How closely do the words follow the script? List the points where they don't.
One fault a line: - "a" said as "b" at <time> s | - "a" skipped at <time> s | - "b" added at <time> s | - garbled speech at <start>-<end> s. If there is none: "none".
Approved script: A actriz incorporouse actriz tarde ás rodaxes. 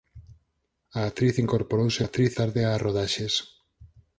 none